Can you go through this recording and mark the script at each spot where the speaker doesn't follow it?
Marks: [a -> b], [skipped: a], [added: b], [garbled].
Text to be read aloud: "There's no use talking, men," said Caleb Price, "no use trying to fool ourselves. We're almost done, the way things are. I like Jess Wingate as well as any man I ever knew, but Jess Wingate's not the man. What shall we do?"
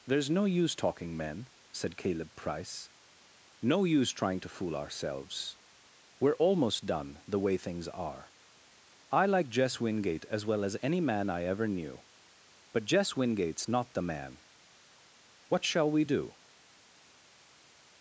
"There's no use talking, men," said Caleb Price, "no use trying to fool ourselves. We're almost done, the way things are. I like Jess Wingate as well as any man I ever knew, but Jess Wingate's not the man. What shall we do?"